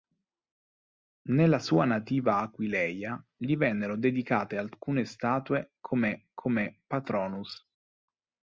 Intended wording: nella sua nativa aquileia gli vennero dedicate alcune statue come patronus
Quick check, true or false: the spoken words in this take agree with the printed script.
false